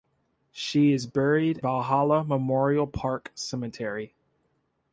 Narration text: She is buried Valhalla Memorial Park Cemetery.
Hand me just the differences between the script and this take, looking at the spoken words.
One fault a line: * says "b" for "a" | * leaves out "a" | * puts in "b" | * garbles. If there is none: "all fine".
all fine